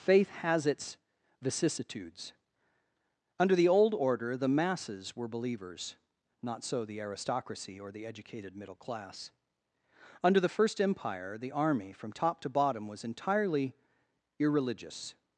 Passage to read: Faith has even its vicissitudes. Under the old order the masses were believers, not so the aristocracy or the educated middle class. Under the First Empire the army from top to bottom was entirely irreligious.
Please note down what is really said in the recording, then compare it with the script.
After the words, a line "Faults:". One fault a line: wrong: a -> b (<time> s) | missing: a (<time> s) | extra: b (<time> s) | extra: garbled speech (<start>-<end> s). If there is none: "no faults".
Faith has its vicissitudes. Under the old order the masses were believers, not so the aristocracy or the educated middle class. Under the First Empire the army from top to bottom was entirely irreligious.
Faults:
missing: even (0.7 s)